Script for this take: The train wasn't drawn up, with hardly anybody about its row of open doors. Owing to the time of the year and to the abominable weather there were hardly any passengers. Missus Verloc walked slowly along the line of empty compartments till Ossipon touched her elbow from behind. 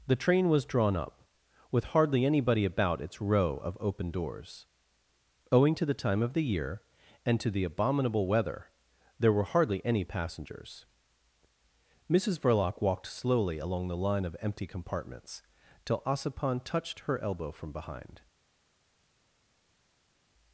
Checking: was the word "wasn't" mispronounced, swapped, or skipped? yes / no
yes